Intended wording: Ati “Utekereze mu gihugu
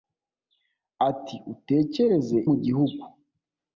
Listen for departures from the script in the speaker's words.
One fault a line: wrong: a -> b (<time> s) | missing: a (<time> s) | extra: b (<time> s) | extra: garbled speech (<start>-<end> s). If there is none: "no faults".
no faults